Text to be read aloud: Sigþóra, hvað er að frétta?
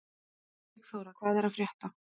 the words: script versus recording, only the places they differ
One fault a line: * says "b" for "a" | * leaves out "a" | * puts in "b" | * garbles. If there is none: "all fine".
all fine